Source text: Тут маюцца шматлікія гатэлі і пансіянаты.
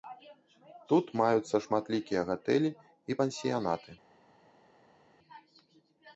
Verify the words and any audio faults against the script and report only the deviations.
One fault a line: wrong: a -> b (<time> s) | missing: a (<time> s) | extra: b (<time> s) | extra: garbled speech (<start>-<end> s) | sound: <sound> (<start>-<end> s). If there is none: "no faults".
no faults